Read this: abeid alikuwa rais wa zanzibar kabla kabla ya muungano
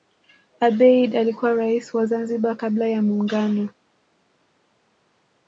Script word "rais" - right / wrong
right